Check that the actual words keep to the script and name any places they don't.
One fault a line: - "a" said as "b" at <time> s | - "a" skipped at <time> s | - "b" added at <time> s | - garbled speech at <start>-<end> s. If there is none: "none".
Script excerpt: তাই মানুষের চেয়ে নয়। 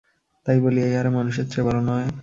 - "বলিয়া ইহারা" added at 0.6 s
- "বড়" added at 1.6 s